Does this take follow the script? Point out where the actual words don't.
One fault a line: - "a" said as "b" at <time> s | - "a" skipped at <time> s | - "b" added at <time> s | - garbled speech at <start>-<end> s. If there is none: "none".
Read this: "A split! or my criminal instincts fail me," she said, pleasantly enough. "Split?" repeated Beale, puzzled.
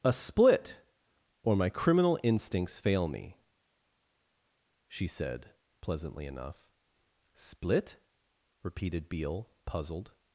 none